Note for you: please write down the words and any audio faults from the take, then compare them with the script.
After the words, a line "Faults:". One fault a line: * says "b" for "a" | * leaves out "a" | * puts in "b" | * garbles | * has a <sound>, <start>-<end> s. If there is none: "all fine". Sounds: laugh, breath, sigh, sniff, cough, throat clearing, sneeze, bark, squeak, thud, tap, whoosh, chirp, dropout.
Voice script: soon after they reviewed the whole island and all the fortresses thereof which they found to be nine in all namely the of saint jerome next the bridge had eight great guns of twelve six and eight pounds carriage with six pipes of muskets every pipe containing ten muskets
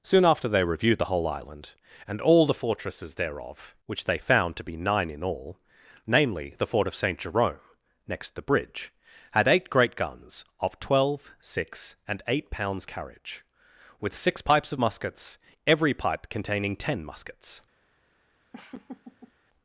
soon after they reviewed the whole island and all the fortresses thereof which they found to be nine in all namely the fort of saint jerome next the bridge had eight great guns of twelve six and eight pounds carriage with six pipes of muskets every pipe containing ten muskets
Faults:
* puts in "fort"
* has a laugh, 18.5-19.3 s